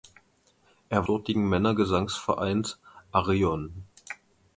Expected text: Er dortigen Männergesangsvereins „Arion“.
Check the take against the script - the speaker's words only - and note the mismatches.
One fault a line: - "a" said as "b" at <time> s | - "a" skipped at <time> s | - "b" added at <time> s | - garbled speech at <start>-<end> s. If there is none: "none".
none